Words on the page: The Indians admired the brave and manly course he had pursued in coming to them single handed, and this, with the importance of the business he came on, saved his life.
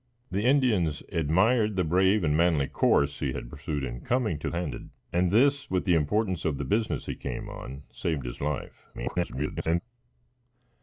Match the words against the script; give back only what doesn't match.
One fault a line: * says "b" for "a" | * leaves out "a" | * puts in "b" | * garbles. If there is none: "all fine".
* leaves out "them single"
* garbles